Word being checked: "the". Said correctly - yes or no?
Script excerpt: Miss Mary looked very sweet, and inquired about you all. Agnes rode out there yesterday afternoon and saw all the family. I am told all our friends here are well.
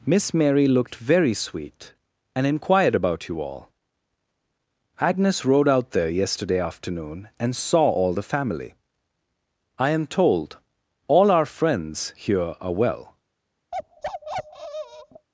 yes